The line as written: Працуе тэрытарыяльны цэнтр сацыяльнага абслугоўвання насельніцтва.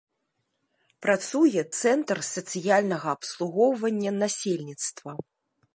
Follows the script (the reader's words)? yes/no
no